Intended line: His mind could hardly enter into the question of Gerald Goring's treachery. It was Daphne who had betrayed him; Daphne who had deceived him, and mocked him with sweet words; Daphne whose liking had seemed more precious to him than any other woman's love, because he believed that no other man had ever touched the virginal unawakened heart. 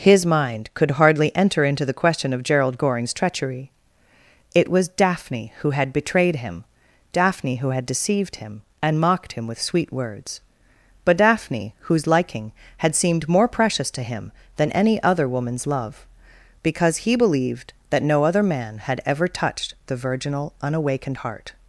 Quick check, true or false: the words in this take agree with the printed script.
false